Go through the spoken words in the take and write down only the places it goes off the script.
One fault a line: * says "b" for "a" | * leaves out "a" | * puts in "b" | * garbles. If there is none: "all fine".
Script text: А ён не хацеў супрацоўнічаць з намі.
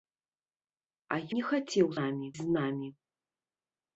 * leaves out "ён"
* says "намі" for "супрацоўнічаць"